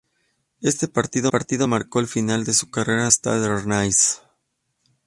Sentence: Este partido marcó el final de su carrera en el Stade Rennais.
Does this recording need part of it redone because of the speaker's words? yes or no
yes